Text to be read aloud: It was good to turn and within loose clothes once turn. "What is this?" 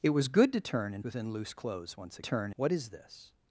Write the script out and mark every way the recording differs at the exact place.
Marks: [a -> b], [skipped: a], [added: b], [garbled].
It was good to turn and within loose clothes once turn. "What is this?"